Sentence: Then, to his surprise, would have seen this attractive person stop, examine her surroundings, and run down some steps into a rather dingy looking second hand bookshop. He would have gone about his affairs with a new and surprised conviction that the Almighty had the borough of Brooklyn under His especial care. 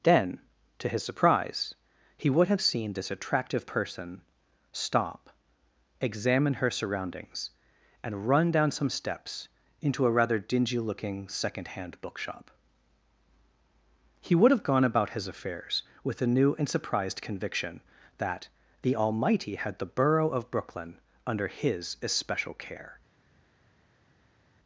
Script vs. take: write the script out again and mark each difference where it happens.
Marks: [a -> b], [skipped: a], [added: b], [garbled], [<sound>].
Then, to his surprise, [added: he] would have seen this attractive person stop, examine her surroundings, and run down some steps into a rather dingy looking second hand bookshop. He would have gone about his affairs with a new and surprised conviction that the Almighty had the borough of Brooklyn under His especial care.